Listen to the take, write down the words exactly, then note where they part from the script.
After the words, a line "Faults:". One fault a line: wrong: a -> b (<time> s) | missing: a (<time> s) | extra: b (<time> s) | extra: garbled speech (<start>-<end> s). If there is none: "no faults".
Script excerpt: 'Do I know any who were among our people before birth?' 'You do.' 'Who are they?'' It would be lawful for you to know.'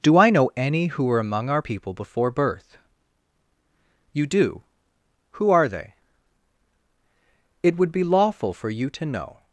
'Do I know any who were among our people before birth?' 'You do.' 'Who are they?'' It would be lawful for you to know.'
Faults:
no faults